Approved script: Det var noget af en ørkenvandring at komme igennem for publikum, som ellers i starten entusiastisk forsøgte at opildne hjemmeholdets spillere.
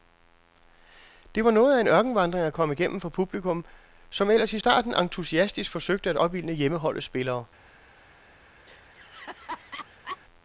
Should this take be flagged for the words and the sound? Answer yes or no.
yes